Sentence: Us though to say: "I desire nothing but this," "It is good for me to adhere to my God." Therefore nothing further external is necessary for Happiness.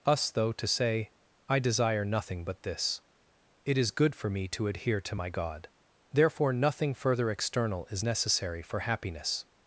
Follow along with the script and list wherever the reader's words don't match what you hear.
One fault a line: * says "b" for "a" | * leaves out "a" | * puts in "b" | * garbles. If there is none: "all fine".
all fine